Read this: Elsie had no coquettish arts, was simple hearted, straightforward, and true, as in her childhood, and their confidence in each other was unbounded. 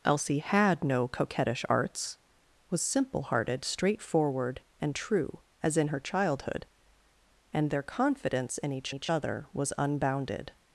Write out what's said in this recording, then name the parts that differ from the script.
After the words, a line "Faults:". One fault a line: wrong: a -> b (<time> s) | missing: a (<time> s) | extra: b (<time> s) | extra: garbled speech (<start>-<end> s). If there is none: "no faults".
Elsie had no coquettish arts, was simple hearted, straightforward, and true, as in her childhood, and their confidence in each each other was unbounded.
Faults:
extra: each (8.9 s)